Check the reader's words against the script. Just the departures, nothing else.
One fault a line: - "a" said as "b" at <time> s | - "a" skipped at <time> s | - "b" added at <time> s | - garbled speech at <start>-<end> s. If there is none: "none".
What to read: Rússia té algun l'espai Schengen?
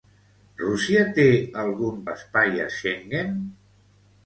none